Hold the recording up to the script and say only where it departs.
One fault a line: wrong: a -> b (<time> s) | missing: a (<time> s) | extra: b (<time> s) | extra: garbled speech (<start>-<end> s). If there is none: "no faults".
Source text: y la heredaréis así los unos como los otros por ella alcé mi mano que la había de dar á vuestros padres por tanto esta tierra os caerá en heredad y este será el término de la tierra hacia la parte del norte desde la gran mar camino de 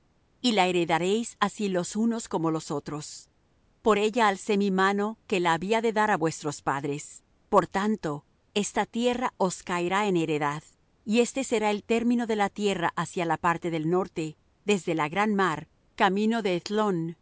no faults